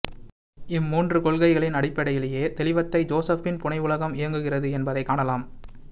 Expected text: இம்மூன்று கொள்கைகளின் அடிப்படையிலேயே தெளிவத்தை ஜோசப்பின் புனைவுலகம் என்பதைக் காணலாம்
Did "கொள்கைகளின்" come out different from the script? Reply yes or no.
no